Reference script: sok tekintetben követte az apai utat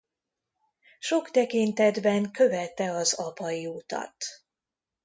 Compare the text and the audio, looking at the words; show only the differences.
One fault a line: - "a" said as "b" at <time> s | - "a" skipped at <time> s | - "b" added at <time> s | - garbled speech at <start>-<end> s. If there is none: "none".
none